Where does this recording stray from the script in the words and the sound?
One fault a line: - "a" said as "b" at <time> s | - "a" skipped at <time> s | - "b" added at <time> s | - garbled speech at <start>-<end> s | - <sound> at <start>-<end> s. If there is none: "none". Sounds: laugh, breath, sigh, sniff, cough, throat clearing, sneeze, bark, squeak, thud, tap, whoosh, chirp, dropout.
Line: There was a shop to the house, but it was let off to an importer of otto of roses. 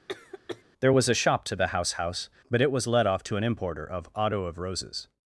- cough at 0.1-0.6 s
- "house" added at 1.9 s